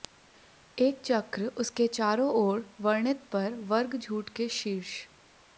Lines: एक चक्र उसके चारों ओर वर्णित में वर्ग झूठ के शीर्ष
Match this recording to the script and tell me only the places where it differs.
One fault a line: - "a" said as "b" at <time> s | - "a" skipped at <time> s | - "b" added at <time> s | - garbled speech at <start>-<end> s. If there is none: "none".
- "में" said as "पर" at 3.3 s